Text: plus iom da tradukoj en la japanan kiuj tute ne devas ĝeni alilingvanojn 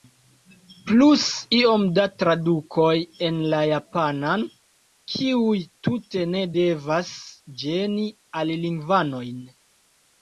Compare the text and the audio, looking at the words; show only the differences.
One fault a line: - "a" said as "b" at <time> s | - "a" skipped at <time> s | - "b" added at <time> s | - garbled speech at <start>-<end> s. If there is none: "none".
none